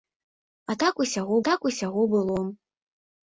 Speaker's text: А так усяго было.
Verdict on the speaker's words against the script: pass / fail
fail